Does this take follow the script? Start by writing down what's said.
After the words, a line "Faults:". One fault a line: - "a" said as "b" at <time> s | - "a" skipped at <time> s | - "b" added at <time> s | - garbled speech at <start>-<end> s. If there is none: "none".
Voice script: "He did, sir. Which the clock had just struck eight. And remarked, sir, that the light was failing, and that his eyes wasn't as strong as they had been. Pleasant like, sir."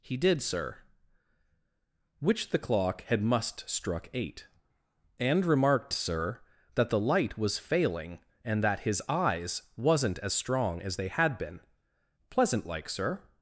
"He did, sir. Which the clock had must struck eight. And remarked, sir, that the light was failing, and that his eyes wasn't as strong as they had been. Pleasant like, sir."
Faults:
- "just" said as "must" at 3.2 s